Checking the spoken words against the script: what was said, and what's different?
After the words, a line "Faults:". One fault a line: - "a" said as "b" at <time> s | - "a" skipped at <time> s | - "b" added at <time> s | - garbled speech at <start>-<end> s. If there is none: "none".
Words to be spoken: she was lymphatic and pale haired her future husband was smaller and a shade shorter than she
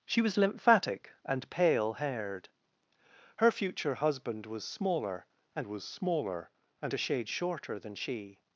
she was lymphatic and pale haired her future husband was smaller and was smaller and a shade shorter than she
Faults:
- "was smaller and" added at 5.7 s